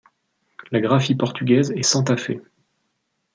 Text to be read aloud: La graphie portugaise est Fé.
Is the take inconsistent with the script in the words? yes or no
yes